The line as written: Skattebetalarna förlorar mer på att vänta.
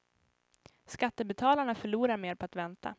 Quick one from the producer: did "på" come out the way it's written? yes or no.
yes